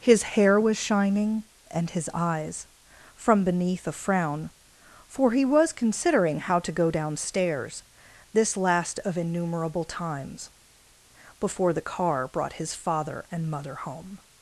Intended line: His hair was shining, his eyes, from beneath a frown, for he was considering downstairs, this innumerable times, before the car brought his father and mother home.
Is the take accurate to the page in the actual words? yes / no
no